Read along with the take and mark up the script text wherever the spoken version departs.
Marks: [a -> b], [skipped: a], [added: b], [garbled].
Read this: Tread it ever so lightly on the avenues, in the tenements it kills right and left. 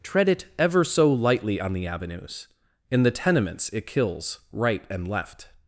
Tread it ever so lightly on the avenues, in the tenements it kills right and left.